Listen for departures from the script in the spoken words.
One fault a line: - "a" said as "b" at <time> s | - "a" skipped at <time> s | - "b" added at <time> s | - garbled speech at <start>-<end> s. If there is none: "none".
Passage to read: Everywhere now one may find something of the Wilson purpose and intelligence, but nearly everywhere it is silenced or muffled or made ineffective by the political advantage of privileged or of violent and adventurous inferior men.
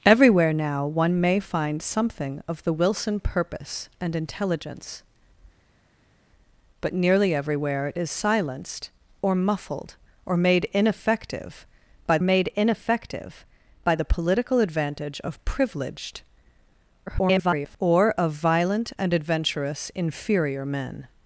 - "made ineffective by" added at 12.2 s
- garbled speech at 17.1-17.8 s